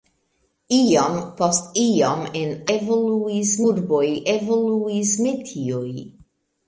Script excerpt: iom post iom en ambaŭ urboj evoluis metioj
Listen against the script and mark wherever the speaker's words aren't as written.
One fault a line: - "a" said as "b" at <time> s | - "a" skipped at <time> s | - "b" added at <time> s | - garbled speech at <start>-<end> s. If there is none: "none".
- "ambaŭ" said as "evoluis" at 2.8 s